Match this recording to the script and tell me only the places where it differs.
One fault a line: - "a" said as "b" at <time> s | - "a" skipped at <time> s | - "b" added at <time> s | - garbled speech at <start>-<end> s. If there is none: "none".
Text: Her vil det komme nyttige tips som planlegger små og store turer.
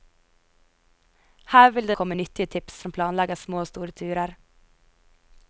none